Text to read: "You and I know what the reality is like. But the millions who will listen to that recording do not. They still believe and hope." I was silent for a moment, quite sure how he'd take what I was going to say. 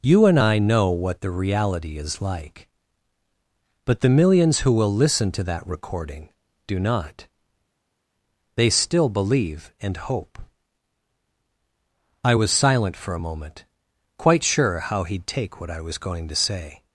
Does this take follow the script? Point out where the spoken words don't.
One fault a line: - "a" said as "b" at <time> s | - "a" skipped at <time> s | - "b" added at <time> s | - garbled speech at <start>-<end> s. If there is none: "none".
none